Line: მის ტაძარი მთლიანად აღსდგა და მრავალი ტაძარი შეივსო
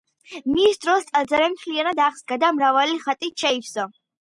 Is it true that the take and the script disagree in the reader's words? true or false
true